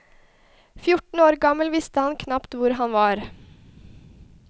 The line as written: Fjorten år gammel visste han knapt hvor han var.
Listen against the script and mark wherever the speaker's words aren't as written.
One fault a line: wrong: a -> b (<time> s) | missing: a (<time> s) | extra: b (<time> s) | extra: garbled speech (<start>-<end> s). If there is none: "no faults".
no faults